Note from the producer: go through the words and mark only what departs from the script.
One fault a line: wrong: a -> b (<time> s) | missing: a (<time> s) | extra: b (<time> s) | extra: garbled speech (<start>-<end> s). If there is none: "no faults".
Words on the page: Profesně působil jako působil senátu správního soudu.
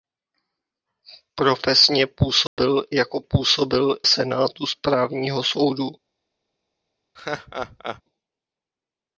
no faults